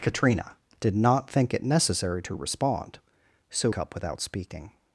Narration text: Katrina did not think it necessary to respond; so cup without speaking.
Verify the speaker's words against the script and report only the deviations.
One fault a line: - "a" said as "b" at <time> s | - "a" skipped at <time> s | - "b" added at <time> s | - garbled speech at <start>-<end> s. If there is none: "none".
none